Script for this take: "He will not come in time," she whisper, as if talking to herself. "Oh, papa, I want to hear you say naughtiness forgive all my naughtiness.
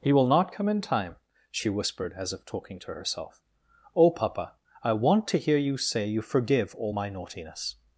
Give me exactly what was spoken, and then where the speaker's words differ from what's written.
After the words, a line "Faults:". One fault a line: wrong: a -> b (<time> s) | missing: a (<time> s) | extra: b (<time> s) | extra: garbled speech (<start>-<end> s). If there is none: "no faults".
"He will not come in time," she whispered, as if talking to herself. "Oh, papa, I want to hear you say you forgive all my naughtiness.
Faults:
wrong: whisper -> whispered (1.7 s)
wrong: naughtiness -> you (6.1 s)